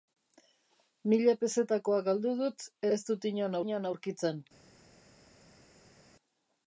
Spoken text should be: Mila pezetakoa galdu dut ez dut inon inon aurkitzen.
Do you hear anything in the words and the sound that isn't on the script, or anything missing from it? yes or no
no